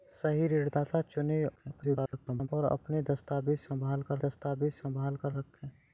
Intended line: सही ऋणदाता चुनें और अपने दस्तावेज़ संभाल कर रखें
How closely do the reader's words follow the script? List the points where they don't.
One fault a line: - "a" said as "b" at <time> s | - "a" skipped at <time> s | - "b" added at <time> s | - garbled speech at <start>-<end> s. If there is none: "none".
- garbled speech at 1.6-2.5 s
- "दस्तावेज़ संभाल कर" added at 4.2 s